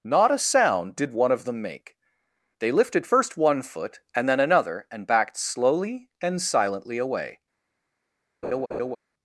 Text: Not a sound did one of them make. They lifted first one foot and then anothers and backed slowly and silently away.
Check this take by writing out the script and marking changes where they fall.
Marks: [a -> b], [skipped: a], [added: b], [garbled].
Not a sound did one of them make. They lifted first one foot and then [anothers -> another] and backed slowly and silently away.